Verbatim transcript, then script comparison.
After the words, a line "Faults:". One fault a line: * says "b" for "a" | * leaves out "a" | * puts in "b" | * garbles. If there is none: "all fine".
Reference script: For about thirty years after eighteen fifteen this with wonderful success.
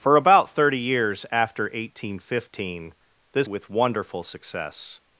For about thirty years after eighteen fifteen this with wonderful success.
Faults:
all fine